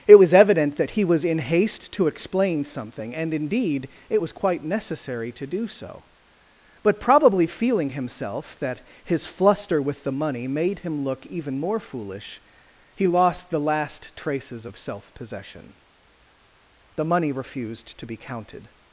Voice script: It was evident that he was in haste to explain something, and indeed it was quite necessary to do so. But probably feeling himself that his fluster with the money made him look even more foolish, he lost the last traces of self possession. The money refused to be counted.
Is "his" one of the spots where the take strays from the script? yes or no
no